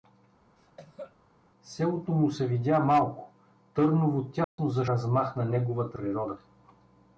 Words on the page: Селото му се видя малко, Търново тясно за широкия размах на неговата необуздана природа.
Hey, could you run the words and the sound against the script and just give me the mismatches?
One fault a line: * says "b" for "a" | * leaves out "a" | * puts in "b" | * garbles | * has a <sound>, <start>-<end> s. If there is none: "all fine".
* has a cough, 0.6-1.2 s
* has a dropout, 4.4-4.6 s
* leaves out "широкия"
* leaves out "необуздана"